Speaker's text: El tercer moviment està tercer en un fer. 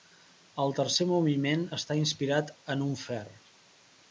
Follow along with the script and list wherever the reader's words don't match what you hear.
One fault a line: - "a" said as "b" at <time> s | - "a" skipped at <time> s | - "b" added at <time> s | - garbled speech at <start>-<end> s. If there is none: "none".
- "tercer" said as "inspirat" at 2.0 s